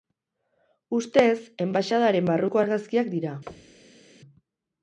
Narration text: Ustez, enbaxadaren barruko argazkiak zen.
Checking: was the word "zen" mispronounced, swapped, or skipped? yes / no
yes